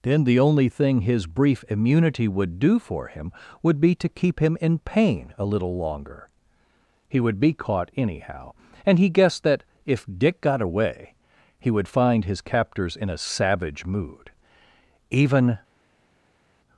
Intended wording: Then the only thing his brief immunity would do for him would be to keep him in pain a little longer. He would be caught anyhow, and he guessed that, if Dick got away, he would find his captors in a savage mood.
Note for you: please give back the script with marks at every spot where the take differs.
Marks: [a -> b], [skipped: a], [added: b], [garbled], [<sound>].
Then the only thing his brief immunity would do for him would be to keep him in pain a little longer. He would be caught anyhow, and he guessed that, if Dick got away, he would find his captors in a savage mood. [added: Even]